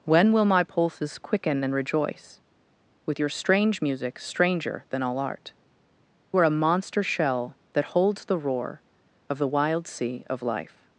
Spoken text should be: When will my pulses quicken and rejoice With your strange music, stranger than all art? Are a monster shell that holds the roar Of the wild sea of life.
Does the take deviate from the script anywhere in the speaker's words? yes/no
no